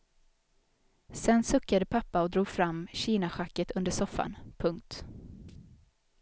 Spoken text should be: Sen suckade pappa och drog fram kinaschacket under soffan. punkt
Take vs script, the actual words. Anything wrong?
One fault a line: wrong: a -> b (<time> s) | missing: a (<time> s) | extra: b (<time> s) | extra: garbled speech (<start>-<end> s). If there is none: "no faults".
no faults